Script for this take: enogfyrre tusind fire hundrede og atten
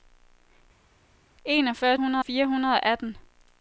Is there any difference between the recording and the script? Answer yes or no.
yes